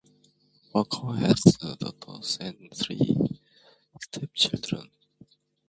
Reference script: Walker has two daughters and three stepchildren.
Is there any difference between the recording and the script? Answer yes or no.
no